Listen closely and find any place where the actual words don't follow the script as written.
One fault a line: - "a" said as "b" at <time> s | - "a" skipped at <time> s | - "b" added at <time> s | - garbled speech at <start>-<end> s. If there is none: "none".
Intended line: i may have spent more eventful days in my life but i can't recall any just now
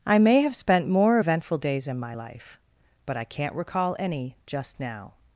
none